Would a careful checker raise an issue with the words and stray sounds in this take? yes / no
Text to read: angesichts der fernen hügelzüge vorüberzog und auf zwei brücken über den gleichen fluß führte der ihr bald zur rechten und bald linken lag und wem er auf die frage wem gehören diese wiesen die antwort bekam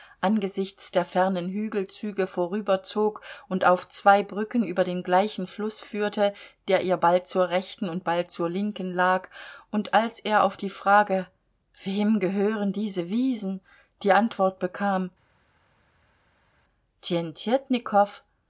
yes